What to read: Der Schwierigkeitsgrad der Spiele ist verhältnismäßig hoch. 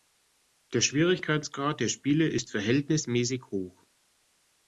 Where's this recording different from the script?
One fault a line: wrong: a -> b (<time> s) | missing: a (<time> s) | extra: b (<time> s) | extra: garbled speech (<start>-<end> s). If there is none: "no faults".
no faults